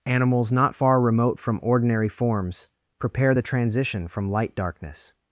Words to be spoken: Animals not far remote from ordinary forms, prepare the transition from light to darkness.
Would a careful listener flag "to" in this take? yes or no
yes